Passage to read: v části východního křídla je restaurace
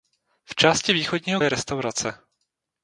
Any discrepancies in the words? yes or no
yes